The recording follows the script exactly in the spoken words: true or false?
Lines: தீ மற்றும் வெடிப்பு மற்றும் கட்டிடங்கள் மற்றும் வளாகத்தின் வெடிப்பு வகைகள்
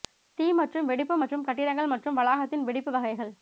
true